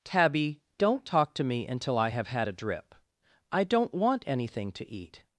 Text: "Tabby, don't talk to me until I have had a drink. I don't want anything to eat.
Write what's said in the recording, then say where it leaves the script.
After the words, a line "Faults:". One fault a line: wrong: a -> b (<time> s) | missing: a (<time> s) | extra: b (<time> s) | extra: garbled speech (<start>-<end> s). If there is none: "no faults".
"Tabby, don't talk to me until I have had a drip. I don't want anything to eat.
Faults:
wrong: drink -> drip (2.5 s)